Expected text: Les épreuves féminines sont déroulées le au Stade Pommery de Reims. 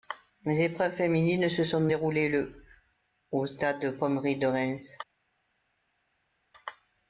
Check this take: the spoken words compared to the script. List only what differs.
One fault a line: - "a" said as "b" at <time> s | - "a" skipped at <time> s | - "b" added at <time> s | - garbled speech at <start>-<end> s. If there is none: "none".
- "se" added at 1.5 s